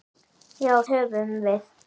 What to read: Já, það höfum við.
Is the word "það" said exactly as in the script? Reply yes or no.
no